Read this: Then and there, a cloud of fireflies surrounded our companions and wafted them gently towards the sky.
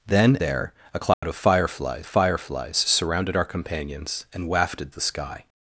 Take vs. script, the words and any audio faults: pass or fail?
fail